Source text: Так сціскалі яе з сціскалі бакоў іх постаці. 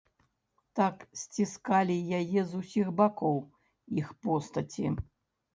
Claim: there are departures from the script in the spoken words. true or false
true